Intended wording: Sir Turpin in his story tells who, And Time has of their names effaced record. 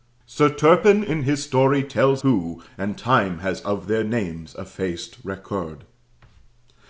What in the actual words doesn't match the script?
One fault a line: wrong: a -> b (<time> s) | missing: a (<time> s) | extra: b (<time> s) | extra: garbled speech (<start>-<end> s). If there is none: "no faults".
no faults